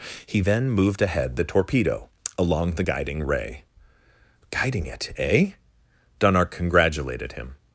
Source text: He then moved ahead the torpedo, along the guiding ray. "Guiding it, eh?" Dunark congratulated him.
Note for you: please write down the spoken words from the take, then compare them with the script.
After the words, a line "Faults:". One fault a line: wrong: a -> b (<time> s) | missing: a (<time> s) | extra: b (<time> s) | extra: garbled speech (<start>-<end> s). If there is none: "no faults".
He then moved ahead the torpedo, along the guiding ray. "Guiding it, eh?" Dunark congratulated him.
Faults:
no faults